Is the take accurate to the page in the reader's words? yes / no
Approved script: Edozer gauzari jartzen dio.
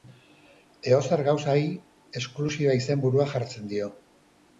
no